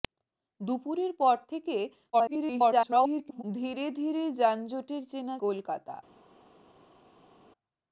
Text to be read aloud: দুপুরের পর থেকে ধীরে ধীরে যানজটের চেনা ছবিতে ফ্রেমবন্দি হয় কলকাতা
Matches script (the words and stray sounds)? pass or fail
fail